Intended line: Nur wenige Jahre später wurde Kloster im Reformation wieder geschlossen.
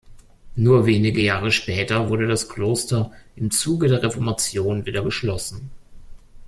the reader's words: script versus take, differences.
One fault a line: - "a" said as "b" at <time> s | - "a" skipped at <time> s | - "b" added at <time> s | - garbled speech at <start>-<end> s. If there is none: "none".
- "das" added at 2.3 s
- "Zuge der" added at 3.5 s